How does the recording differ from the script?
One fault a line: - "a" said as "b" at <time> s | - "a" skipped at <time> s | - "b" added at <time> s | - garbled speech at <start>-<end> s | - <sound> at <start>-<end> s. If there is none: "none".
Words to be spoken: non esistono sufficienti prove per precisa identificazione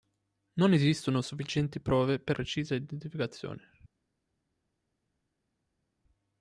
none